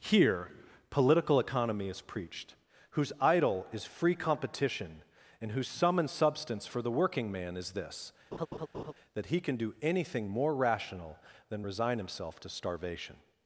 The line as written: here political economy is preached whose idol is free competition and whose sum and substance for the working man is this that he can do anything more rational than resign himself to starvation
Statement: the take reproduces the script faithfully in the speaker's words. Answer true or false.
true